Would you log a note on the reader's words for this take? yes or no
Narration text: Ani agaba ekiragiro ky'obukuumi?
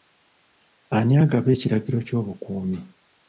no